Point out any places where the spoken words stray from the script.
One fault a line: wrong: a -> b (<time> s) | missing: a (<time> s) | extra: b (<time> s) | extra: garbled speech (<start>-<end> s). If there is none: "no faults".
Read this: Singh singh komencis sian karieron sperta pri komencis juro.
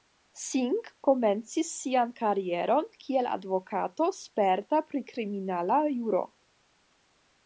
missing: singh (0.9 s)
extra: kiel advokato (3.0 s)
wrong: komencis -> kriminala (5.1 s)